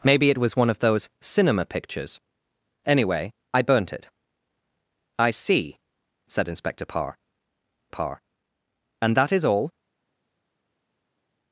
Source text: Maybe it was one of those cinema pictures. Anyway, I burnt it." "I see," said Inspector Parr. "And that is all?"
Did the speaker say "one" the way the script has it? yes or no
yes